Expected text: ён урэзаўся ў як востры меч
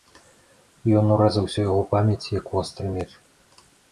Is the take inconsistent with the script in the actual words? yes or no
yes